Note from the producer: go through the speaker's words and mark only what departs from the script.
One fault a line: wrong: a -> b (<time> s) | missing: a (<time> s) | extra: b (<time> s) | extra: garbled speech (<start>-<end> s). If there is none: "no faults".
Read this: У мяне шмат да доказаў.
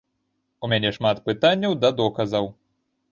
extra: пытанняў (1.3 s)